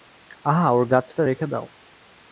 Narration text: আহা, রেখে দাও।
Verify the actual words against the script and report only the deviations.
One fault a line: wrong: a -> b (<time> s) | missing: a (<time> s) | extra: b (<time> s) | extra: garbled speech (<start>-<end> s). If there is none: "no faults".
extra: ওর গাছটা (0.7 s)